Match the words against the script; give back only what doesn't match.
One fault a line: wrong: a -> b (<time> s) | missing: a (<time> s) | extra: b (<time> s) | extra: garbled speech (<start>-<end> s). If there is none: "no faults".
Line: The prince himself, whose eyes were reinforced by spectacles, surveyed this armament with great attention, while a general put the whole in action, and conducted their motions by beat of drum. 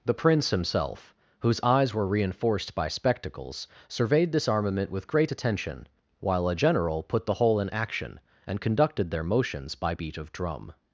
no faults